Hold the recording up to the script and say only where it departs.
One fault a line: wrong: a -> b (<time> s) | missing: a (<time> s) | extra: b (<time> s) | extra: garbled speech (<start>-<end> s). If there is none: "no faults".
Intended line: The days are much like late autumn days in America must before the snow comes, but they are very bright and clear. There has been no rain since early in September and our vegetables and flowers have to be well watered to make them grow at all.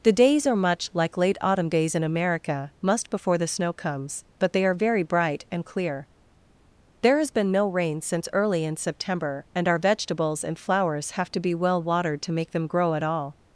no faults